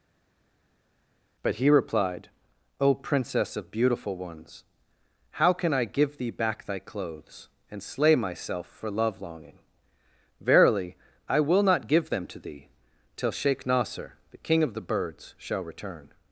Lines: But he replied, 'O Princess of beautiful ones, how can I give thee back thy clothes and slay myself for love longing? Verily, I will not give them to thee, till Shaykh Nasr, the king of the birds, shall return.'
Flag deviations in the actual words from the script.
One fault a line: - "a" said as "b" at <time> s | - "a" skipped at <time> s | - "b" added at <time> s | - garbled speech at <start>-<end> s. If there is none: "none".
none